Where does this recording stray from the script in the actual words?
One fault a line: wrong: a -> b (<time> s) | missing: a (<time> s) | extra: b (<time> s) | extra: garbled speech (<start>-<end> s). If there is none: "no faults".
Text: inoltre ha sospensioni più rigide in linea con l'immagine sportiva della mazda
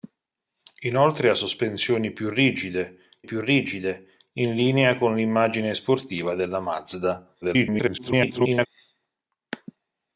extra: più rigide (3.2 s)
extra: garbled speech (7.4-8.7 s)